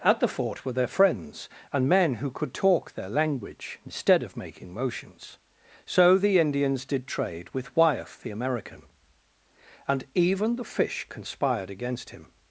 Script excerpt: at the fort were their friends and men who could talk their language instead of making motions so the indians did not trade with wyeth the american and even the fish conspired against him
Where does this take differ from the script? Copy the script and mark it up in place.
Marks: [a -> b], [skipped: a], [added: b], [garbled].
at the fort were their friends and men who could talk their language instead of making motions so the indians did [skipped: not] trade with wyeth the american and even the fish conspired against him